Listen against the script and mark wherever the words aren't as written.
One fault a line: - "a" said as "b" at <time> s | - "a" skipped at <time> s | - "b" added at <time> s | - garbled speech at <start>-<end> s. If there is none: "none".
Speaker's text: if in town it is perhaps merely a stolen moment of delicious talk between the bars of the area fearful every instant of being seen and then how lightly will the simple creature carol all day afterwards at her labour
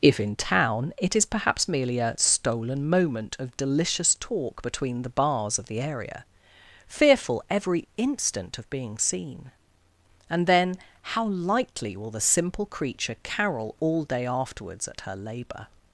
none